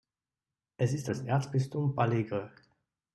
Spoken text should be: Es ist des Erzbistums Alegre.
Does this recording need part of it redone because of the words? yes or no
no